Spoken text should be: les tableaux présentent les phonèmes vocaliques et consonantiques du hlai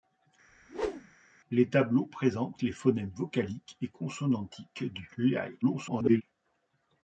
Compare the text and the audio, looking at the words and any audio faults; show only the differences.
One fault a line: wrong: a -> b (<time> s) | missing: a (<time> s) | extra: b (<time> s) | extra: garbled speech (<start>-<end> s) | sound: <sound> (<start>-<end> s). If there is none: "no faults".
sound: whoosh (0.5-1.2 s)
extra: garbled speech (5.6-6.2 s)